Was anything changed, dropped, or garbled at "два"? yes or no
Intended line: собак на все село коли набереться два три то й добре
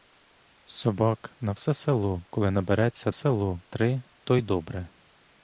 yes